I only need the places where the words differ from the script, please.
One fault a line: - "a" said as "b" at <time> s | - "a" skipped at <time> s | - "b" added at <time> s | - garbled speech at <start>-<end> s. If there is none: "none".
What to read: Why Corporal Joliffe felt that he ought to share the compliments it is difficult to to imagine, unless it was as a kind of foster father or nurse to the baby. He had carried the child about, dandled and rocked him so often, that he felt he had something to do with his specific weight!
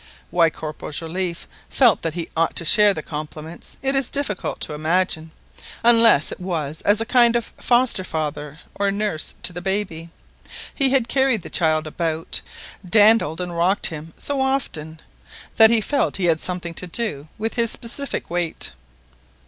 - "to" skipped at 4.7 s